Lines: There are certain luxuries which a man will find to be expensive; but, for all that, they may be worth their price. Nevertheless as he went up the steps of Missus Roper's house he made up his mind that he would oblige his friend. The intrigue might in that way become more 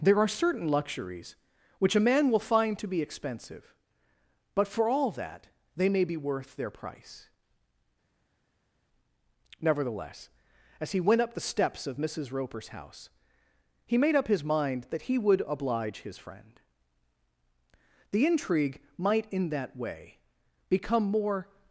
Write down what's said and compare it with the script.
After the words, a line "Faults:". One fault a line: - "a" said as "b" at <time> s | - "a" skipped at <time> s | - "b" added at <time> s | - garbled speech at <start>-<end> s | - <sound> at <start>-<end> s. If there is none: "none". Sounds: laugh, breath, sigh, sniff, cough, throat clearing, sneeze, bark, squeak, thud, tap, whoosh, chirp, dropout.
There are certain luxuries which a man will find to be expensive; but, for all that, they may be worth their price. Nevertheless as he went up the steps of Missus Roper's house he made up his mind that he would oblige his friend. The intrigue might in that way become more
Faults:
none